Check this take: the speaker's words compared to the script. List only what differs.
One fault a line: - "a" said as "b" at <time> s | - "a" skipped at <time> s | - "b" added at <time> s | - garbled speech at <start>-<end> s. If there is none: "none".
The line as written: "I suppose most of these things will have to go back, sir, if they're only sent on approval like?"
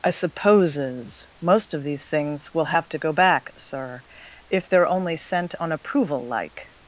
- "suppose" said as "supposes" at 0.1 s